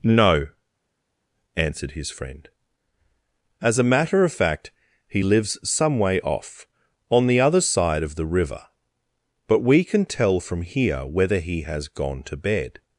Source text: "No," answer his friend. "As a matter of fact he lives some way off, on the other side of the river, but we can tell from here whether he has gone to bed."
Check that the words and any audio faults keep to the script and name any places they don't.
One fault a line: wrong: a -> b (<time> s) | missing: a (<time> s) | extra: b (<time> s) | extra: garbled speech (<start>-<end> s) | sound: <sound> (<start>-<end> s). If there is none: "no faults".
wrong: answer -> answered (1.6 s)